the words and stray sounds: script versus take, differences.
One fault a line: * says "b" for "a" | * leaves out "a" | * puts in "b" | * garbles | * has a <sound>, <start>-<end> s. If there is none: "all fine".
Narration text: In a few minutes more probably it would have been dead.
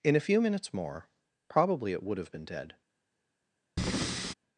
* has a breath, 3.8-4.3 s